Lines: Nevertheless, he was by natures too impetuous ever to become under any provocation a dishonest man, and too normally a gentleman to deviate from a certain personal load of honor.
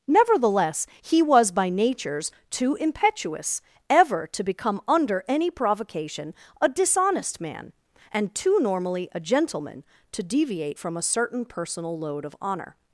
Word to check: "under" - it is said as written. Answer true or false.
true